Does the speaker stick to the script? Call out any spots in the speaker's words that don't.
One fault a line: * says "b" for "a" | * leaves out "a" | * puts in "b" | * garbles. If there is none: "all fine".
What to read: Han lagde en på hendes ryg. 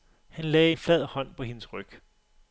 * puts in "flad hånd"